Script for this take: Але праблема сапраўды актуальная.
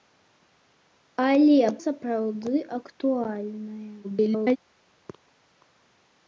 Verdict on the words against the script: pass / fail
fail